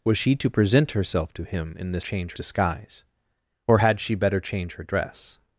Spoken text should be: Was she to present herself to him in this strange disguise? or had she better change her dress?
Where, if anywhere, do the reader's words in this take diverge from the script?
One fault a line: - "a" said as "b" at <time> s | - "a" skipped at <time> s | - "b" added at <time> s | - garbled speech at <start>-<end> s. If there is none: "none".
- "strange" said as "change" at 2.0 s